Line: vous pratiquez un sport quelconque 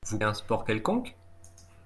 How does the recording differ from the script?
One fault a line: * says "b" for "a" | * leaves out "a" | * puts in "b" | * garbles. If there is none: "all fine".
* leaves out "pratiquez"